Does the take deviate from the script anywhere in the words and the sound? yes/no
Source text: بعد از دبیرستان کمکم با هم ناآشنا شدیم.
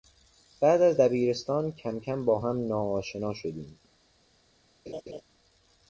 yes